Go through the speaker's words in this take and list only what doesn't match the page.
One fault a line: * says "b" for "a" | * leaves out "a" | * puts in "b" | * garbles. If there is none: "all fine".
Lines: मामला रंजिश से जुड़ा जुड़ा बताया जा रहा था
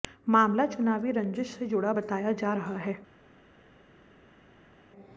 * puts in "चुनावी"
* leaves out "जुड़ा"
* says "है" for "था"